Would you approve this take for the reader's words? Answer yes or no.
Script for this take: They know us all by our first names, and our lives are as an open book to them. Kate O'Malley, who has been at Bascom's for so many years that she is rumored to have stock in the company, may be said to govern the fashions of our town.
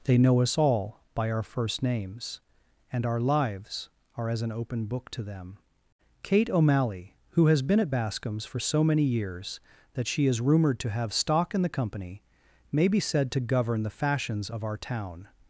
yes